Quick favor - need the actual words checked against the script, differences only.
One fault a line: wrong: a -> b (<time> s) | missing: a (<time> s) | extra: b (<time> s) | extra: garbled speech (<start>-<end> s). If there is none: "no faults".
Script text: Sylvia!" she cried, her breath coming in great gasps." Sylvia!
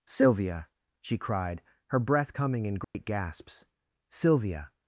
no faults